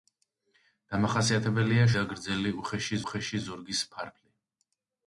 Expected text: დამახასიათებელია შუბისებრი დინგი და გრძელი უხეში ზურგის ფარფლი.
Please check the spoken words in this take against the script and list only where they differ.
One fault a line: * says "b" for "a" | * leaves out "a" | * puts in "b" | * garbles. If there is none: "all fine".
* leaves out "შუბისებრი დინგი"
* puts in "უხეში"